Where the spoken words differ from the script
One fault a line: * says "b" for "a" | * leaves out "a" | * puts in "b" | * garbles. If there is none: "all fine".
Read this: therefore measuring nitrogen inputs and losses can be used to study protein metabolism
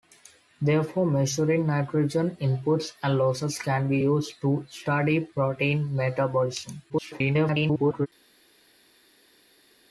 * garbles